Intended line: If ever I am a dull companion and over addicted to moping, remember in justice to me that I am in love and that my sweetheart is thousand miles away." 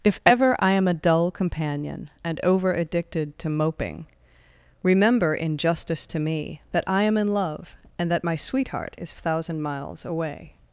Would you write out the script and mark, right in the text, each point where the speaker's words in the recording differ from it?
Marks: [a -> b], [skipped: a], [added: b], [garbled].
If ever I am a dull companion and over addicted to moping, remember in justice to me that I am in love and that my sweetheart is thousand miles away."